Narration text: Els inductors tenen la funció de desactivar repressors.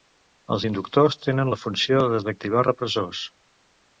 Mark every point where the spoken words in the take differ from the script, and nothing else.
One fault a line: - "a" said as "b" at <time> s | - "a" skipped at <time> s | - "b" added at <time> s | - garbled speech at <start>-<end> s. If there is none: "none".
none